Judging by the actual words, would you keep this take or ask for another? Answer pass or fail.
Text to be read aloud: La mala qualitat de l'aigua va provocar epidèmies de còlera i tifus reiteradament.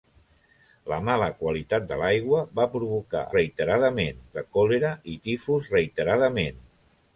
fail